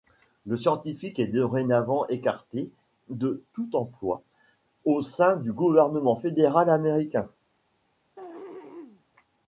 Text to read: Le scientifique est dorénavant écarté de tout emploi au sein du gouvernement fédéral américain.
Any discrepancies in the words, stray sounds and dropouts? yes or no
yes